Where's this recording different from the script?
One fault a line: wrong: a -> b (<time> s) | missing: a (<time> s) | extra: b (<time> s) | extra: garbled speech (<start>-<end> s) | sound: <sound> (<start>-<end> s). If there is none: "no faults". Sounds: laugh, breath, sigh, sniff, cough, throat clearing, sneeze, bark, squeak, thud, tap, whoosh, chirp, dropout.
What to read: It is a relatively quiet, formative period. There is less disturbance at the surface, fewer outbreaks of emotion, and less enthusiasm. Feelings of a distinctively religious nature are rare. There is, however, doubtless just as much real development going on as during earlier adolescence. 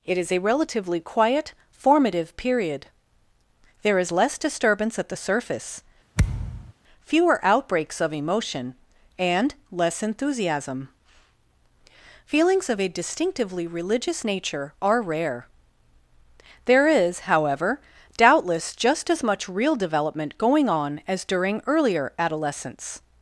sound: thud (6.2-6.7 s)